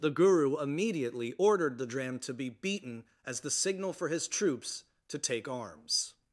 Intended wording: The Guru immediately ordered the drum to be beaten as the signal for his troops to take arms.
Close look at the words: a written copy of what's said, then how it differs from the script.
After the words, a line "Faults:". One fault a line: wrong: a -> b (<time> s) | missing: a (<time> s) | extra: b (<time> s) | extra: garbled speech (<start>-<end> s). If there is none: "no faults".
The Guru immediately ordered the dram to be beaten as the signal for his troops to take arms.
Faults:
wrong: drum -> dram (1.9 s)